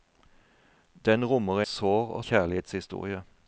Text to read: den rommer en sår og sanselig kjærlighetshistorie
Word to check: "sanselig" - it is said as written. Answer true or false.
false